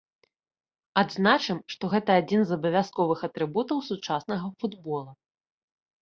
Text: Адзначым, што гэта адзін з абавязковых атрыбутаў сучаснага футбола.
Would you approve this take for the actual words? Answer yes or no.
yes